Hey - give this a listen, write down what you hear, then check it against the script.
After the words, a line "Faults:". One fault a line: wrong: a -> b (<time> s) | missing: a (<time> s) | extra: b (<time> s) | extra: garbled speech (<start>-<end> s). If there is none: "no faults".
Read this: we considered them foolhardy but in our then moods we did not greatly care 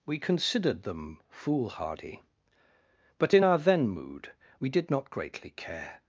we considered them foolhardy but in our then mood we did not greatly care
Faults:
wrong: moods -> mood (3.9 s)